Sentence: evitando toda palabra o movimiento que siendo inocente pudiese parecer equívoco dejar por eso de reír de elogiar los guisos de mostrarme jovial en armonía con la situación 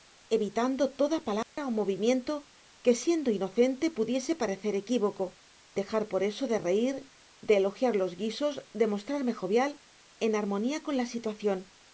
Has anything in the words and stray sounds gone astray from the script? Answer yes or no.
yes